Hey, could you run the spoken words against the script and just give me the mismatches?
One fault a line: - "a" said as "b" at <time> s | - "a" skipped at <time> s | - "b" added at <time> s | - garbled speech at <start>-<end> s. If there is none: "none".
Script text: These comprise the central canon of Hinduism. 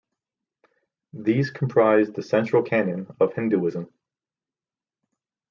none